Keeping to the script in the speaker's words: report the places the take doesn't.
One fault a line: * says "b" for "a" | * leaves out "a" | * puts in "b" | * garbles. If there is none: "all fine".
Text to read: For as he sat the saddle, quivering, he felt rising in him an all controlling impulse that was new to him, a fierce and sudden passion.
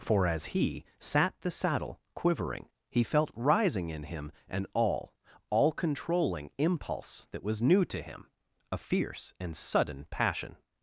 * puts in "all"